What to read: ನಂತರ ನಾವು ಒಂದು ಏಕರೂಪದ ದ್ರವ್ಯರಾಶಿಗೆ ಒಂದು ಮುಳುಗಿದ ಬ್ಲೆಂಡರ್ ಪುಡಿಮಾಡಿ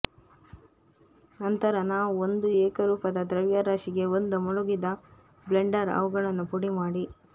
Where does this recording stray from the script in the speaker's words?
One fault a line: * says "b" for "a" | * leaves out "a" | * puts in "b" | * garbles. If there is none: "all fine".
* puts in "ಅವುಗಳನ್ನು"